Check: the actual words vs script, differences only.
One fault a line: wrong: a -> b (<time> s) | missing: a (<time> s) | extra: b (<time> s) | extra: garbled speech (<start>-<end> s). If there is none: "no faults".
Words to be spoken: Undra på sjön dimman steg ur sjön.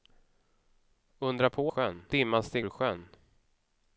no faults